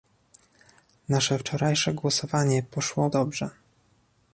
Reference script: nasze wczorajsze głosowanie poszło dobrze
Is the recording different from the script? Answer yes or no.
no